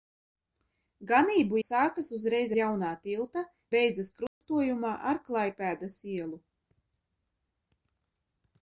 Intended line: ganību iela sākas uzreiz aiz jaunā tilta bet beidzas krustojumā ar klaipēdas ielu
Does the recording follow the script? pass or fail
fail